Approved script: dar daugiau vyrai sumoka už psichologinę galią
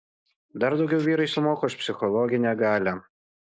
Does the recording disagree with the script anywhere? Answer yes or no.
no